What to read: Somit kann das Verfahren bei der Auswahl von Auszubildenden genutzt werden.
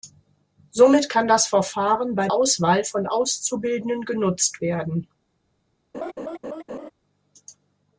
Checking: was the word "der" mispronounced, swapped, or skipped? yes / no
yes